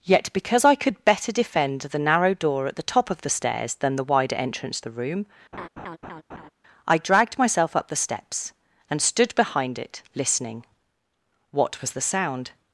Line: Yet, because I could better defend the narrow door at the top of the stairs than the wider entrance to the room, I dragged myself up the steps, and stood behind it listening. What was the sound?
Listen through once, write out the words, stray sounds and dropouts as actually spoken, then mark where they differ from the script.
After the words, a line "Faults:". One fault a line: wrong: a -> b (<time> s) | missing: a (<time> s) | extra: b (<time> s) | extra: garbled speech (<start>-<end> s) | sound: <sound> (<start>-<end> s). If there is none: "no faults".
Yet, because I could better defend the narrow door at the top of the stairs than the wider entrance the room, I dragged myself up the steps, and stood behind it listening. What was the sound?
Faults:
missing: to (4.8 s)
sound: laugh (5.5-6.5 s)